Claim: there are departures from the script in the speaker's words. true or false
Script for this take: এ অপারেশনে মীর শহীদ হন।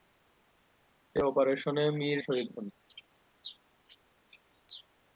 false